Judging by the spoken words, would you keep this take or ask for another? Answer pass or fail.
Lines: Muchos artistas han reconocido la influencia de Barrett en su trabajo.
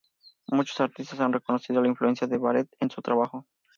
pass